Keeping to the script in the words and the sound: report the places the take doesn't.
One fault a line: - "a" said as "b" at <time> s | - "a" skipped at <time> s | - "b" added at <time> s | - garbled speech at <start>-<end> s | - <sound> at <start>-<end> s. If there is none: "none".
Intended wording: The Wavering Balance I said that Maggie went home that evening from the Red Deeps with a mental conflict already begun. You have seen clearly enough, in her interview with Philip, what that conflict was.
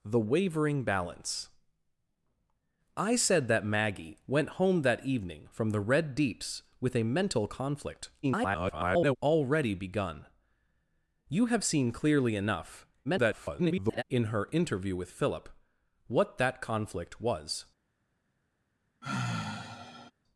- garbled speech at 8.2-9.2 s
- garbled speech at 13.0-14.0 s
- sigh at 19.0-20.1 s